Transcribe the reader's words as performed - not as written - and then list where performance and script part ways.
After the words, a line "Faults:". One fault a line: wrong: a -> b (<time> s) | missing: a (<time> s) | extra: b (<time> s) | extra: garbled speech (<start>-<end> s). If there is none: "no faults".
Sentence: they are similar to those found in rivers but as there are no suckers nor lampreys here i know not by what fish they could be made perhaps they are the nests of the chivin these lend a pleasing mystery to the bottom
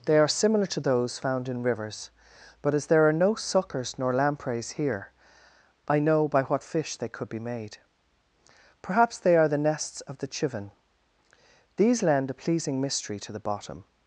they are similar to those found in rivers but as there are no suckers nor lampreys here i know by what fish they could be made perhaps they are the nests of the chivin these lend a pleasing mystery to the bottom
Faults:
missing: not (6.3 s)